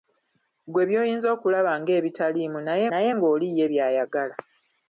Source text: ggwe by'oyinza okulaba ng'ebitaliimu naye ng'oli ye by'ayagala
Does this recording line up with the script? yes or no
no